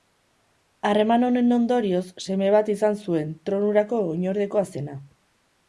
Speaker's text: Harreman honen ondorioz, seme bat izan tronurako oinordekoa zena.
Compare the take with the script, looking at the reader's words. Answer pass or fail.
fail